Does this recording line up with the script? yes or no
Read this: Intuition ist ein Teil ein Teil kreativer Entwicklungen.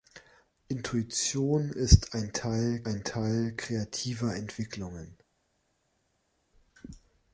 yes